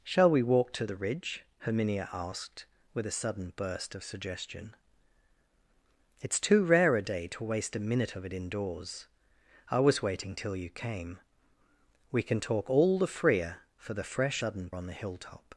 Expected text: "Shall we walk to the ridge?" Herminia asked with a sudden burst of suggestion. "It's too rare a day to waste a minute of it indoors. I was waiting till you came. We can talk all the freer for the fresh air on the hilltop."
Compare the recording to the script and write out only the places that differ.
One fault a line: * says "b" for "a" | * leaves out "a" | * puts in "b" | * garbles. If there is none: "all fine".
* says "sudden" for "air"